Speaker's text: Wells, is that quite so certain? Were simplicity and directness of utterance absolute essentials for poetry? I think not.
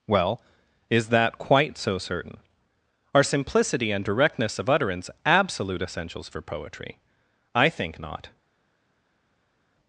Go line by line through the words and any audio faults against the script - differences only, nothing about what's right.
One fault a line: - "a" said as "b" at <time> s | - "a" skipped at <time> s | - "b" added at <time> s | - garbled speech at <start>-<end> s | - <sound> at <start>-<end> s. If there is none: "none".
- "Wells" said as "Well" at 0.1 s
- "Were" said as "Are" at 3.1 s